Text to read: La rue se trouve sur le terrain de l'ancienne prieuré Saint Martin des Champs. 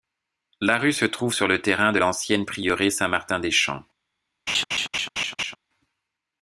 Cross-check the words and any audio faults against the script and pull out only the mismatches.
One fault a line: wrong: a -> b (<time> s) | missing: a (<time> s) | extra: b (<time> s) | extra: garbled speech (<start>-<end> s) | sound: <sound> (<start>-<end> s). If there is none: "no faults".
sound: laugh (4.5-5.6 s)